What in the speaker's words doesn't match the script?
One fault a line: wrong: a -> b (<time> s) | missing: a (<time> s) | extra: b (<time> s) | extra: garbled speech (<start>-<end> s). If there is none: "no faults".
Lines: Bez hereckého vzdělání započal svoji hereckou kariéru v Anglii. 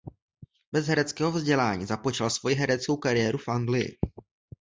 no faults